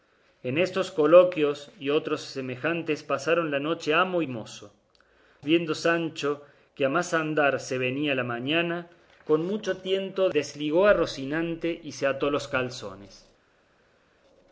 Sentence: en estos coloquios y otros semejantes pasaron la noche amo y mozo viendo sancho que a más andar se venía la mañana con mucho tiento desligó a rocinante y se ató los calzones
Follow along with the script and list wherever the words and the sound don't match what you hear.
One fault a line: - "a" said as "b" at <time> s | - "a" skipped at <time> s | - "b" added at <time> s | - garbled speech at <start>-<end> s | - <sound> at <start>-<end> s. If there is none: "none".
none